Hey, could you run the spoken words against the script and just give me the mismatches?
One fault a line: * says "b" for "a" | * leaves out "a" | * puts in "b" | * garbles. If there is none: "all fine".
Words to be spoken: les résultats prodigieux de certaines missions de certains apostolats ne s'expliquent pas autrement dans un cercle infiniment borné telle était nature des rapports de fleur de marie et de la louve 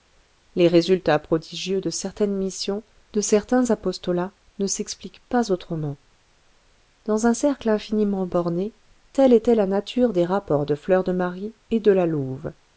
* puts in "la"